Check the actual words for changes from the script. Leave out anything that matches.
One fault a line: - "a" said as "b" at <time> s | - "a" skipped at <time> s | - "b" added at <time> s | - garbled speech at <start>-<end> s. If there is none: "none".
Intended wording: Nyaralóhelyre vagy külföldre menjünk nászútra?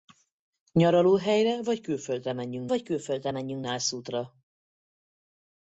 - "vagy külföldre menjünk" added at 2.7 s